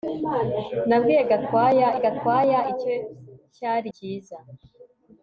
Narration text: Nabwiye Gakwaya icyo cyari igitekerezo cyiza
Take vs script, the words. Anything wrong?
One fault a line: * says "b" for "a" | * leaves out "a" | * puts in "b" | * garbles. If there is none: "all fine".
* puts in "Gakwaya"
* leaves out "igitekerezo"